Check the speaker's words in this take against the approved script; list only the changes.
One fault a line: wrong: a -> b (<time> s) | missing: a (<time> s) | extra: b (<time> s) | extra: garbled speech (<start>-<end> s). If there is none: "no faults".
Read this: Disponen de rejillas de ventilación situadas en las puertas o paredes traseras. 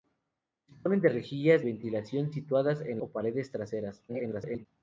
missing: de (1.6 s)
missing: las puertas (3.0 s)
extra: garbled speech (4.1-4.7 s)